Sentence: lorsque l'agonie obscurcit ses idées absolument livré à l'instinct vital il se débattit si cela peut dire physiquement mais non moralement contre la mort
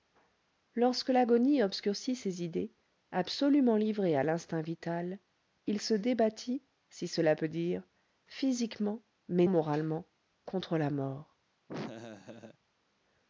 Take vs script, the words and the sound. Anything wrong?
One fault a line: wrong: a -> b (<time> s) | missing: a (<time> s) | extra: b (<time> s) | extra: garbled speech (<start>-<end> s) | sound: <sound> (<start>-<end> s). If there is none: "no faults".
missing: non (9.4 s)
sound: laugh (11.7-12.6 s)